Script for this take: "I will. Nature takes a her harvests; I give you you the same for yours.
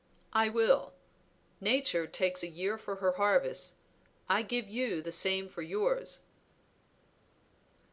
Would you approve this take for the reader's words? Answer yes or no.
no